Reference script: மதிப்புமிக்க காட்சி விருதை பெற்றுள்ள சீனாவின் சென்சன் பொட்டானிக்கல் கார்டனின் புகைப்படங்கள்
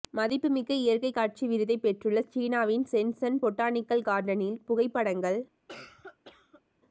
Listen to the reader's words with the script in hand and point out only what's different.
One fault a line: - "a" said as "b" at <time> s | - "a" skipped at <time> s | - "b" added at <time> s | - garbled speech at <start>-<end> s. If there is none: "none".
- "இயற்கை" added at 0.8 s